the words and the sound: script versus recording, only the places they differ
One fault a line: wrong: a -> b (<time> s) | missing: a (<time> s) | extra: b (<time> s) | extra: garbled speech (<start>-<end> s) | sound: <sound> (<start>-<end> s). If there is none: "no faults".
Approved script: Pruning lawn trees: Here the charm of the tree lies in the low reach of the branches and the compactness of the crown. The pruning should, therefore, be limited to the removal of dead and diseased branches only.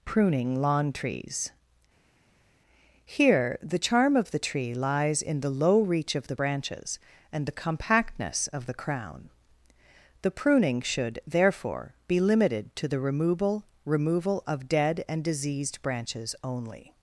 extra: removal (13.8 s)